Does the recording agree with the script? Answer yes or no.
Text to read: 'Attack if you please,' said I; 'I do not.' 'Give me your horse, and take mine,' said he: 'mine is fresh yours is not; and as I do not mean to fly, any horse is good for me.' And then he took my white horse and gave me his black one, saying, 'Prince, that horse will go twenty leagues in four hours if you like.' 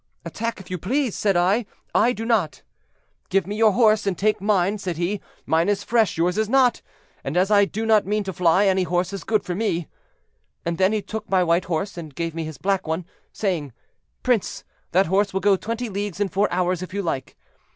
yes